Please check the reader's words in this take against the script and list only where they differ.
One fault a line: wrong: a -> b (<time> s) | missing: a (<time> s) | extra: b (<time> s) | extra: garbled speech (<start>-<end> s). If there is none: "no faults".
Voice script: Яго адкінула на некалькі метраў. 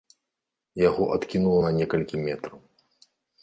no faults